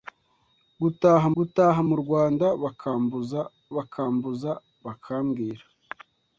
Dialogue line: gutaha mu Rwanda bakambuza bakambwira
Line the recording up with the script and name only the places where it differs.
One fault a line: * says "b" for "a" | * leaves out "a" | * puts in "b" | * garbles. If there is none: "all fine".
* puts in "gutaha"
* puts in "bakambuza"